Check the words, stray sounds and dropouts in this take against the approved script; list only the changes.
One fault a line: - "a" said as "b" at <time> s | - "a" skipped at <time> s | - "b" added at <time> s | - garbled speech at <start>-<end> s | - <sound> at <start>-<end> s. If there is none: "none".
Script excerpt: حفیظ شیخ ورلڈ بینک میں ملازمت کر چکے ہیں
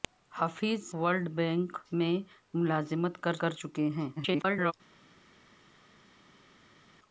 - "شیخ" skipped at 0.8 s
- "کر" added at 3.4 s
- garbled speech at 4.2-4.7 s